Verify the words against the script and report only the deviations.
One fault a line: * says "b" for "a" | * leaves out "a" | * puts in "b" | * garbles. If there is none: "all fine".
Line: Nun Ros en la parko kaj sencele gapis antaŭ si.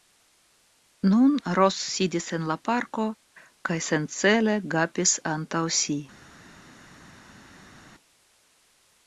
* puts in "sidis"